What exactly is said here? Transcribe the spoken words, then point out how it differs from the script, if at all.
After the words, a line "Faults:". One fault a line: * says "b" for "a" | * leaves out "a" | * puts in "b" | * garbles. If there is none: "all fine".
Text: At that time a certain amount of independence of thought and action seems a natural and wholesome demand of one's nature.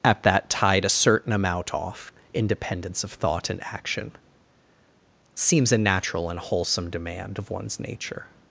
At that tide a certain amount off independence of thought and action seems a natural and wholesome demand of one's nature.
Faults:
* says "tide" for "time"
* says "off" for "of"